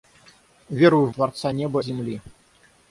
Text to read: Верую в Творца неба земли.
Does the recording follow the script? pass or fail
pass